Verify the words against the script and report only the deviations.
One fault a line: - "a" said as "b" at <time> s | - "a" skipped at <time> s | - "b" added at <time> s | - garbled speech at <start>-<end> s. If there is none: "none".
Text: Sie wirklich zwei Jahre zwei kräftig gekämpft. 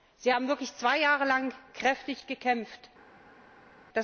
- "haben" added at 0.3 s
- "zwei" said as "lang" at 1.2 s